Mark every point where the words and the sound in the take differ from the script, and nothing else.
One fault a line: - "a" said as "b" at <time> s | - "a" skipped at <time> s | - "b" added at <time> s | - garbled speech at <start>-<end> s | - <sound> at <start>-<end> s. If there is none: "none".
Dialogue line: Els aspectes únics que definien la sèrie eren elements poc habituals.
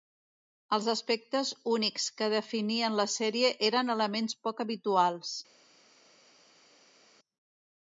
none